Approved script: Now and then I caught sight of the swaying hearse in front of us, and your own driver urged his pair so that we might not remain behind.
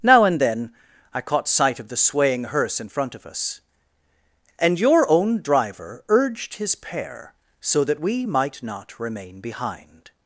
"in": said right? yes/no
yes